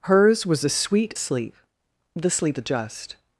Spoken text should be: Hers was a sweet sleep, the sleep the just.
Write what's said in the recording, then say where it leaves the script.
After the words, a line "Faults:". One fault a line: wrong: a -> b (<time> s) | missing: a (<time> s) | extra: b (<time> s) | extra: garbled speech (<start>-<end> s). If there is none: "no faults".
Hers was a sweet sleep, the sleep the just.
Faults:
no faults